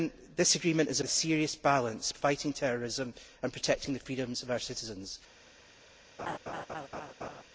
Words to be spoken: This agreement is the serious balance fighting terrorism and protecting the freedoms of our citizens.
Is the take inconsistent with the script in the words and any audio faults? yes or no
yes